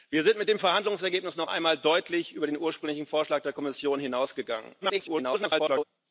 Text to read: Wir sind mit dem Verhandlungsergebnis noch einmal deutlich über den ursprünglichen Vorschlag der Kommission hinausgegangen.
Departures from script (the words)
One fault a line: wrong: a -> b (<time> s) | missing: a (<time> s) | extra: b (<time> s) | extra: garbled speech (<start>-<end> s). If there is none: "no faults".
extra: garbled speech (4.8-5.8 s)